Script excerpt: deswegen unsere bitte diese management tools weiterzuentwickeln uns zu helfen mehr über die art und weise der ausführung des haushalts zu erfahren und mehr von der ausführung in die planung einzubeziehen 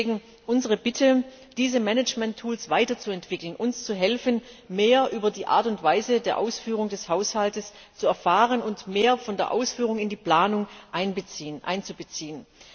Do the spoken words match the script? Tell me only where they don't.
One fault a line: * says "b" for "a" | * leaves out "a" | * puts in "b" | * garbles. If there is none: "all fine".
all fine